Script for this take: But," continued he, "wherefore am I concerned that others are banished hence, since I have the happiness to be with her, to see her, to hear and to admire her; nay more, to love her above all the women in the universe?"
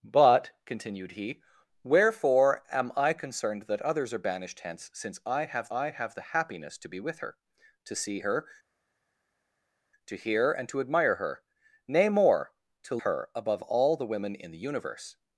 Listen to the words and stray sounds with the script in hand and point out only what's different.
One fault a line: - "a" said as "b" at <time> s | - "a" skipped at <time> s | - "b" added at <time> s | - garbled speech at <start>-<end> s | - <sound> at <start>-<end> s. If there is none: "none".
- "I have" added at 5.7 s
- "love" skipped at 13.0 s